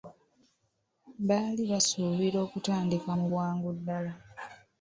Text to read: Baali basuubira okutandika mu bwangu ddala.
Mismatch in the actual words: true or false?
false